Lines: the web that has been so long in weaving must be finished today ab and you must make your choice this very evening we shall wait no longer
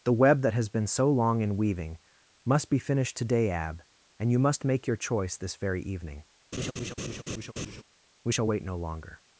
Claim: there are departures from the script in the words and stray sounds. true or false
true